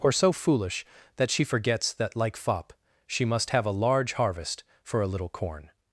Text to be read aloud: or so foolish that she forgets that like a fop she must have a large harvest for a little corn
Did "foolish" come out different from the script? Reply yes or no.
no